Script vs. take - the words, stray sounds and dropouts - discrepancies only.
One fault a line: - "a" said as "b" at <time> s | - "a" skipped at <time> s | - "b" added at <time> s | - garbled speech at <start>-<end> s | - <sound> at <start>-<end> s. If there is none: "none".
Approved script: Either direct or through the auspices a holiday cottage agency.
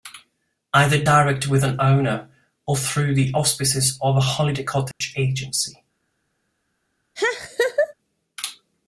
- "with an owner" added at 1.5 s
- "of" added at 4.0 s
- dropout at 4.9-5.0 s
- laugh at 7.2-7.9 s